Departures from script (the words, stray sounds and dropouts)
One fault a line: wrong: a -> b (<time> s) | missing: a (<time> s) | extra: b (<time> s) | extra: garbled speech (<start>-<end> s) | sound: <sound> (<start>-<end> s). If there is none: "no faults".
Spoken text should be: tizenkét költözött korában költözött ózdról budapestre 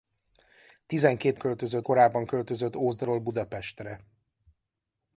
no faults